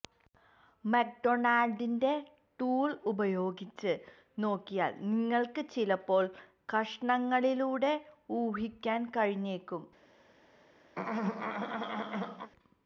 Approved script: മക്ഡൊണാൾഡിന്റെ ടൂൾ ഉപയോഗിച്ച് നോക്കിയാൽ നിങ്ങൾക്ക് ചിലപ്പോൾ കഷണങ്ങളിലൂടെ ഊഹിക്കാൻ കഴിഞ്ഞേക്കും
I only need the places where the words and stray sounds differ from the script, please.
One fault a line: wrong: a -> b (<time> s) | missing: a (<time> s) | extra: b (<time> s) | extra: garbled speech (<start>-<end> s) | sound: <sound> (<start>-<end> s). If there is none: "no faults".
sound: throat clearing (11.0-12.5 s)